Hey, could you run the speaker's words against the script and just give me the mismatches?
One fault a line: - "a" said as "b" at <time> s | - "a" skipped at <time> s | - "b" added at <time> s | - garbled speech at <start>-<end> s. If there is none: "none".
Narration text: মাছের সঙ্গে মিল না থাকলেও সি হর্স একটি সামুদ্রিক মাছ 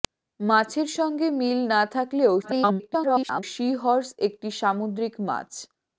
- garbled speech at 2.4-3.4 s